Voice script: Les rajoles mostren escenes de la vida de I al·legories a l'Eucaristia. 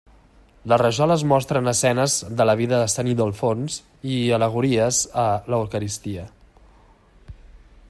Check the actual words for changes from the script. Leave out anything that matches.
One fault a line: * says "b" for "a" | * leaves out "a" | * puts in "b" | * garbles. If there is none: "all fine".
* puts in "Sant Ildefons"